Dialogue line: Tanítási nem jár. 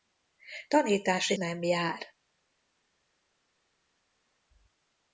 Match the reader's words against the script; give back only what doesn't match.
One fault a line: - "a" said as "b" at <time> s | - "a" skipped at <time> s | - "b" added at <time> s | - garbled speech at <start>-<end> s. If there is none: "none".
none